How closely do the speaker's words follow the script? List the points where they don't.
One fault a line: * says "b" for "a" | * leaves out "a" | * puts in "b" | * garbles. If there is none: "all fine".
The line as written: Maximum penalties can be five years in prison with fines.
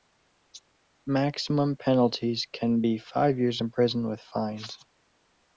all fine